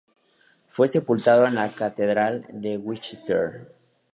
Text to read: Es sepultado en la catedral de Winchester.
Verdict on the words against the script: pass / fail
fail